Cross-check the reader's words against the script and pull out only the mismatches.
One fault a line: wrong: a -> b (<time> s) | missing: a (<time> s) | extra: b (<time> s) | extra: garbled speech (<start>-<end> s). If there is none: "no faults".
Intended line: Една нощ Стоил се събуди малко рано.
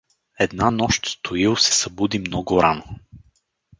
wrong: малко -> много (2.2 s)